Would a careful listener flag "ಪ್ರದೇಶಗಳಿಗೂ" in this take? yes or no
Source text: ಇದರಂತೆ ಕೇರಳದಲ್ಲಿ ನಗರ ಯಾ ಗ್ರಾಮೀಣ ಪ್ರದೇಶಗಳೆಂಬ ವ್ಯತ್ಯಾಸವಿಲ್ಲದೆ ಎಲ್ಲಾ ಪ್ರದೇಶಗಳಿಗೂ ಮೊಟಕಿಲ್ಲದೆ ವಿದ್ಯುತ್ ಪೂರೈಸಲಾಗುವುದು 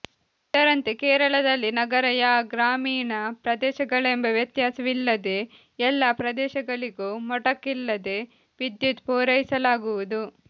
no